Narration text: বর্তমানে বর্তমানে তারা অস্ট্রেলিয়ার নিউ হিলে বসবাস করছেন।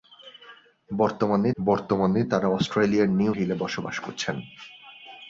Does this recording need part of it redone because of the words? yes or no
no